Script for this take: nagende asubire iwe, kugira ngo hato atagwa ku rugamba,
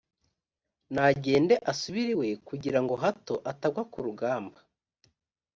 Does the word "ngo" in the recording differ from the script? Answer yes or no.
no